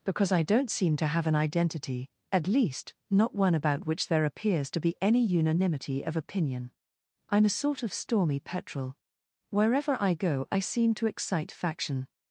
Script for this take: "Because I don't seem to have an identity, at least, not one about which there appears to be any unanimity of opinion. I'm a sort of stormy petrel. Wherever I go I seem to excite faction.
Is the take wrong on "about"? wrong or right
right